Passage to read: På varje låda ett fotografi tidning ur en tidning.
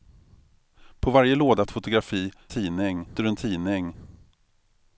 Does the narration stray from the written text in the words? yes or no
no